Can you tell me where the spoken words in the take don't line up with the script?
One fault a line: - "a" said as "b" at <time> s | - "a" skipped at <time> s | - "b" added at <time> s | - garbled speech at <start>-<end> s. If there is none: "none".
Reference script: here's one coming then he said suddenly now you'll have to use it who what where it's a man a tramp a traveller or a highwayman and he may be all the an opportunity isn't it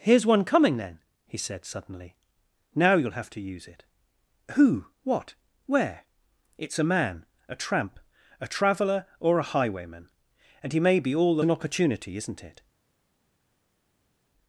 none